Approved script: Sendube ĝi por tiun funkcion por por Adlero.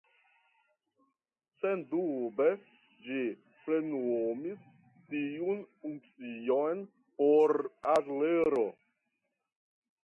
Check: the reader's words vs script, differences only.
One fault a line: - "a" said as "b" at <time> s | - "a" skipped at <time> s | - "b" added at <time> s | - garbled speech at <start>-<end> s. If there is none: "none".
- "por" said as "plenumis" at 3.7 s
- "por" skipped at 7.6 s